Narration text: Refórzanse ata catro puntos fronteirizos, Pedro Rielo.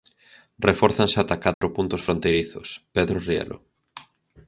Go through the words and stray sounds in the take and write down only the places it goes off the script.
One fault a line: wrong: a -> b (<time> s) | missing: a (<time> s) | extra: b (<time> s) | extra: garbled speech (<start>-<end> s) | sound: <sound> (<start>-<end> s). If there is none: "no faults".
sound: dropout (1.5-1.6 s)